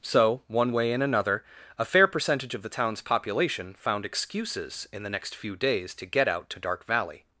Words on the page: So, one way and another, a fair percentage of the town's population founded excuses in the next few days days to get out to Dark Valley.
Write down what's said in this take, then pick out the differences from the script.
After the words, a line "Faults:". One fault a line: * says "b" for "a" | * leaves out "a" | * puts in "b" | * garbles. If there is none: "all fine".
So, one way and another, a fair percentage of the town's population found excuses in the next few days to get out to Dark Valley.
Faults:
* says "found" for "founded"
* leaves out "days"